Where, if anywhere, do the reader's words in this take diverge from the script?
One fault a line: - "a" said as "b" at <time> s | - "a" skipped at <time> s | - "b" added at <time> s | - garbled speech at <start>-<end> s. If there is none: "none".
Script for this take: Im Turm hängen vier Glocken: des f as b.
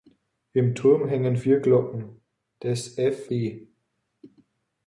- "as" skipped at 3.3 s